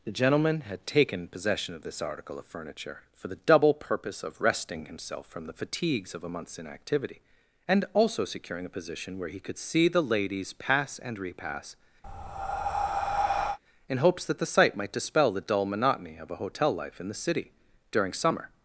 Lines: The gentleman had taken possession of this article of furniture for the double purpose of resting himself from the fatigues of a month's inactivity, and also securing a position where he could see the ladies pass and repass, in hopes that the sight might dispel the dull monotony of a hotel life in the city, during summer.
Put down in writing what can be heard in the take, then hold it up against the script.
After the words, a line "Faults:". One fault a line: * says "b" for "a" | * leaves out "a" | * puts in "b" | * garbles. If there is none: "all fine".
The gentleman had taken possession of this article of furniture for the double purpose of resting himself from the fatigues of a month's inactivity, and also securing a position where he could see the ladies pass and repass, in hopes that the sight might dispel the dull monotony of a hotel life in the city, during summer.
Faults:
all fine